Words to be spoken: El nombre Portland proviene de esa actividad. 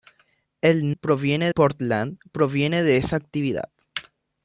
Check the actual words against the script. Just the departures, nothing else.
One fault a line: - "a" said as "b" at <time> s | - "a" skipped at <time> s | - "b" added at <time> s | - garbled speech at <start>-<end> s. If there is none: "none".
- "nombre" said as "proviene" at 1.0 s